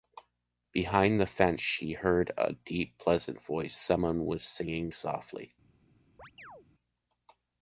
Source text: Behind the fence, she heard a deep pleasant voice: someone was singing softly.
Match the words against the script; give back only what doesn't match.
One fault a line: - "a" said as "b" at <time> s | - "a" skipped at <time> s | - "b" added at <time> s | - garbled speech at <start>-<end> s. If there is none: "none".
none